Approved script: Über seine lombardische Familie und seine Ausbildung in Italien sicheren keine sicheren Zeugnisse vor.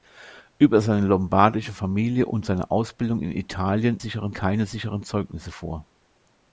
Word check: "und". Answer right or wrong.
right